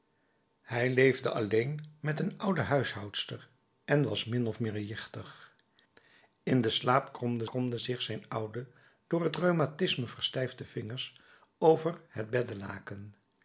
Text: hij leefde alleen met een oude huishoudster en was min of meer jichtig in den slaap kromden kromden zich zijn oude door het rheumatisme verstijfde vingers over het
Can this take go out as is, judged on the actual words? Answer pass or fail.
pass